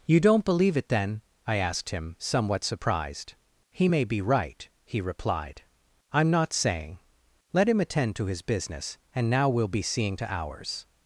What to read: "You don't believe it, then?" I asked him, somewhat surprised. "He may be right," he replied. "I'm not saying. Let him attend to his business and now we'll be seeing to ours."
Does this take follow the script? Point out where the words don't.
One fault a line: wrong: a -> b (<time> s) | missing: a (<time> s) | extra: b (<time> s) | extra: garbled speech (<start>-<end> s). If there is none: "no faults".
no faults